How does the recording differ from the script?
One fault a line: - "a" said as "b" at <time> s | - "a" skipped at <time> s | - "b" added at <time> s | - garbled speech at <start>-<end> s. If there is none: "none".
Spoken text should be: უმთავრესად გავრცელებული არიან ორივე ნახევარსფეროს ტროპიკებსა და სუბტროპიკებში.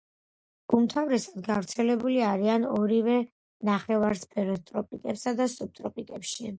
none